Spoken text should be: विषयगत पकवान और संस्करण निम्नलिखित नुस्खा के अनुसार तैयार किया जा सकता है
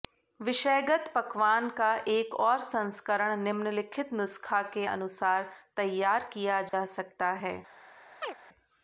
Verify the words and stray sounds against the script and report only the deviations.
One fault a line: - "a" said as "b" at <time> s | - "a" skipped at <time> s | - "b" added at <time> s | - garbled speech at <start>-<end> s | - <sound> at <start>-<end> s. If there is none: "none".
- "का एक" added at 1.7 s
- dropout at 6.7-6.7 s
- chirp at 8.2-8.3 s